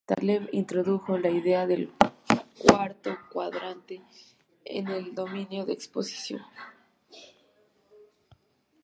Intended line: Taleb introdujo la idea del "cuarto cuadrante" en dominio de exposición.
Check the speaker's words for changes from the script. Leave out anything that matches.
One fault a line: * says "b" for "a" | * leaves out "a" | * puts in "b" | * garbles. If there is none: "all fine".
* puts in "el"